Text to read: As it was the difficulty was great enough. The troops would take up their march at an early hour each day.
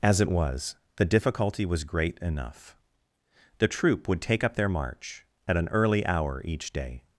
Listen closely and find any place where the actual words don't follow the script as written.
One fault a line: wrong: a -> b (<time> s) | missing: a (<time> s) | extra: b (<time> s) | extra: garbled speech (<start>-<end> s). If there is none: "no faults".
wrong: troops -> troop (3.7 s)